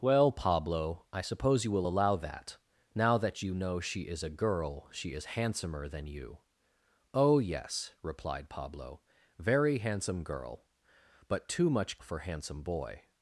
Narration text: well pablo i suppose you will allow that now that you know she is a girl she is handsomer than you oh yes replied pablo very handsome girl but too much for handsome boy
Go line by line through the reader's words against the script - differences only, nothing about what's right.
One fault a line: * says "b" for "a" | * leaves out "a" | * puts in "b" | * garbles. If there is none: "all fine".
all fine